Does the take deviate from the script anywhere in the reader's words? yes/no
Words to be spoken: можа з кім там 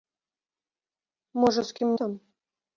no